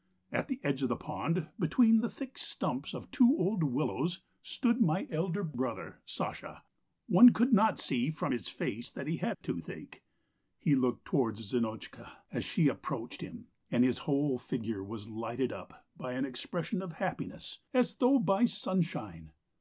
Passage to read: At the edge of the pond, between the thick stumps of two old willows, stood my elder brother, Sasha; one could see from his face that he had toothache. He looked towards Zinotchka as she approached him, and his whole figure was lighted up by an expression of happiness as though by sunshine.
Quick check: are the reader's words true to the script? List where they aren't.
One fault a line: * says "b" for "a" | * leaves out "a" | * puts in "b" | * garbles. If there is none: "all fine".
* puts in "not"